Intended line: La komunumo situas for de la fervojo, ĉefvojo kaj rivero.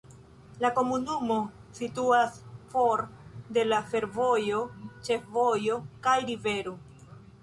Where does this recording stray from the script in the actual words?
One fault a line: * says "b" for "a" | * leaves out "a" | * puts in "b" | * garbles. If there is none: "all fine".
all fine